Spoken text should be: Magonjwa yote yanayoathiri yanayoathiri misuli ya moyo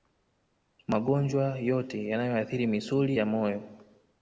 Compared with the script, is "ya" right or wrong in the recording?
right